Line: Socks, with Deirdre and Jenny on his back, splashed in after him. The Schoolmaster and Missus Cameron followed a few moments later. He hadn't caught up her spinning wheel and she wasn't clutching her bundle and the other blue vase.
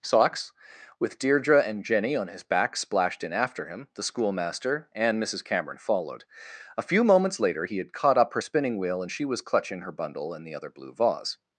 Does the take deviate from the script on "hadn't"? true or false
true